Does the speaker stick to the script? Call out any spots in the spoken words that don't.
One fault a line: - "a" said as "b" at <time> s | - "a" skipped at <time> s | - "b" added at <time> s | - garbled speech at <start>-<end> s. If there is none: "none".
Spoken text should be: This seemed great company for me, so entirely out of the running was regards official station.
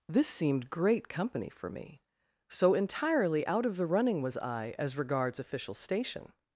- "I as" added at 4.4 s